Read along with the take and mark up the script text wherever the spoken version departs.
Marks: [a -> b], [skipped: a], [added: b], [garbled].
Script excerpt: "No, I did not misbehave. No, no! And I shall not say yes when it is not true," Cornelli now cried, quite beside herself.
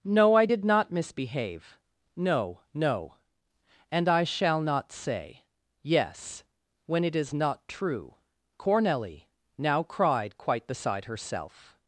"No, I did not misbehave. No, no! And I shall not say yes when it is not true," Cornelli now cried, quite beside herself.